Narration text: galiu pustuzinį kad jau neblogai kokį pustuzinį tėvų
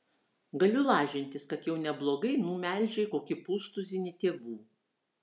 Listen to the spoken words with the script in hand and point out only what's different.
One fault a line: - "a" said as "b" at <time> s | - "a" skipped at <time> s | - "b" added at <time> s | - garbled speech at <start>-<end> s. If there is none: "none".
- "pustuzinį" said as "lažintis" at 0.9 s
- "numelžei" added at 2.5 s